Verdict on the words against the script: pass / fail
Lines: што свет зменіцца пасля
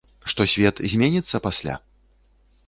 pass